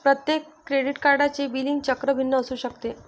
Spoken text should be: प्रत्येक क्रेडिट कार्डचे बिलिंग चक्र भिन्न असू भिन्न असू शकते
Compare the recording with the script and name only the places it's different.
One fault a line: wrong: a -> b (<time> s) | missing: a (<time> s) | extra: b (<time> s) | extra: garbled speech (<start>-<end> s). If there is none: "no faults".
missing: भिन्न असू (2.5 s)